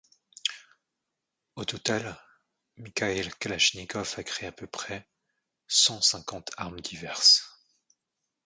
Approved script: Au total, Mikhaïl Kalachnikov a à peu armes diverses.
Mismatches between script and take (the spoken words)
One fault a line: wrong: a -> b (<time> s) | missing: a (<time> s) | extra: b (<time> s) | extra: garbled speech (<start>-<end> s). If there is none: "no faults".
extra: créé (4.2 s)
extra: près cent cinquante (4.7 s)